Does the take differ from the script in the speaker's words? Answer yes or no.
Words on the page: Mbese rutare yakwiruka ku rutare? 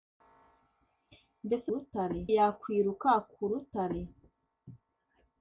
no